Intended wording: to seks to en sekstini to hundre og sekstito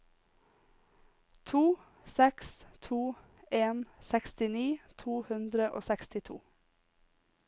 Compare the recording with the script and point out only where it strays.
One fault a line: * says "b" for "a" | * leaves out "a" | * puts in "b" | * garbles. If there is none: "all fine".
all fine